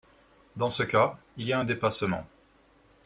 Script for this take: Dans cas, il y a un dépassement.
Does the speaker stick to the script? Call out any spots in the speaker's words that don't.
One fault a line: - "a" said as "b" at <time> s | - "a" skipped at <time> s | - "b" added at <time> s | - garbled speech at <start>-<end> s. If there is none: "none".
- "ce" added at 0.7 s